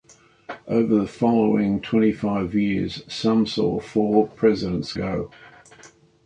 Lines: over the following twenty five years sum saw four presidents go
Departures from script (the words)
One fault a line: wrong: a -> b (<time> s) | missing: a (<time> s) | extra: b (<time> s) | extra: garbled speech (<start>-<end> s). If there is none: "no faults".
no faults